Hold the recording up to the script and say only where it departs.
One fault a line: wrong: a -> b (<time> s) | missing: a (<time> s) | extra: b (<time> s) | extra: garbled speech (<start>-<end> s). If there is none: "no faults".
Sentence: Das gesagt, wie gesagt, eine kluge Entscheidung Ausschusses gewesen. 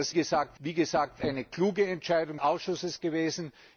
no faults